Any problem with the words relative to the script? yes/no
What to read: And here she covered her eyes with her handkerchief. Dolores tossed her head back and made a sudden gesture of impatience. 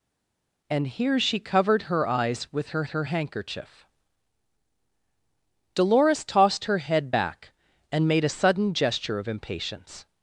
yes